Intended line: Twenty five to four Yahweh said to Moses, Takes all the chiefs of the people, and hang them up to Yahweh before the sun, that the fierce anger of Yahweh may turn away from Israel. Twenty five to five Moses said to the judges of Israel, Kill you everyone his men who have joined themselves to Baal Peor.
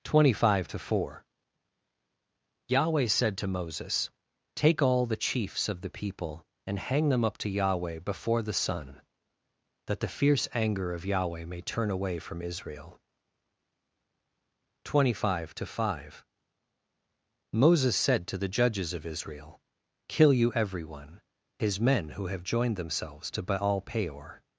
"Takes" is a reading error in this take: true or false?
true